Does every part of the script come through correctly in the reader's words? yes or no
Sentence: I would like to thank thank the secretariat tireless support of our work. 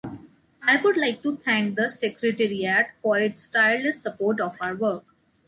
no